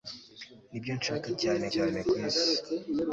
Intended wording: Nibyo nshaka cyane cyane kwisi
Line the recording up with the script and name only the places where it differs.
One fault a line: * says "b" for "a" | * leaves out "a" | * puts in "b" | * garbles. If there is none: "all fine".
all fine